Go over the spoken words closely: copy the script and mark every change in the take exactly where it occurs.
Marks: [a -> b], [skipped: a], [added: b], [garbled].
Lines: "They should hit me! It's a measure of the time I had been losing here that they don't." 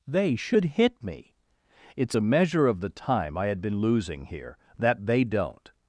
"They should hit me! It's a measure of the time I had been losing here that they don't."